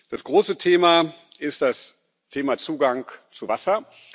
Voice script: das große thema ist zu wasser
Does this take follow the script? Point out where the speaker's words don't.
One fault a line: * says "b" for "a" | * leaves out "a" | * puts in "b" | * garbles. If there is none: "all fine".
* puts in "das thema zugang"